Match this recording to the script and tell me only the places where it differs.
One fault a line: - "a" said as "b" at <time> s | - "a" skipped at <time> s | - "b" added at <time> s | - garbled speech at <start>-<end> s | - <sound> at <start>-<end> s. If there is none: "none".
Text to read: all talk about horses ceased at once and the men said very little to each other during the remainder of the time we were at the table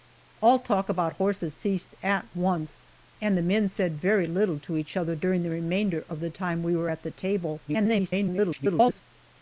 - garbled speech at 7.7-9.0 s